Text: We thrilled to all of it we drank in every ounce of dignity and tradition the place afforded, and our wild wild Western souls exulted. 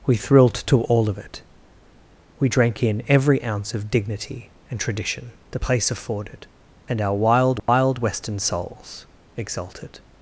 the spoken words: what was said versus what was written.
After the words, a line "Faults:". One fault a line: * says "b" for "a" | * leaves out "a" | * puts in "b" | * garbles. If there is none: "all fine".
We thrilled to all of it we drank in every ounce of dignity and tradition the place afforded, and our wild wild Western souls exulted.
Faults:
all fine